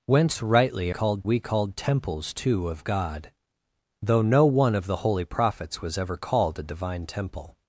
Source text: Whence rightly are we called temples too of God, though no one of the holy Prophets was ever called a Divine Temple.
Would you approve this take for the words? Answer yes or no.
no